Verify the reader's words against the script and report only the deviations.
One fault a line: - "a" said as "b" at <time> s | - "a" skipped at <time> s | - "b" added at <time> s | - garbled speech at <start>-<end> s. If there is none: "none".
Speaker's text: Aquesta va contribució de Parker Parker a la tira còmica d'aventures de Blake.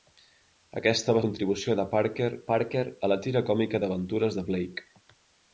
none